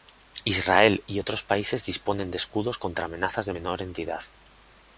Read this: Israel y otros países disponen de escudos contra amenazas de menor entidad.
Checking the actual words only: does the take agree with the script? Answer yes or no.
yes